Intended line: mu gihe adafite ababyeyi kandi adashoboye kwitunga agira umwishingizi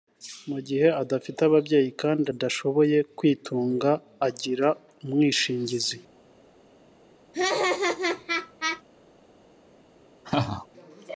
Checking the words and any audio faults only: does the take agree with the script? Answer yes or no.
no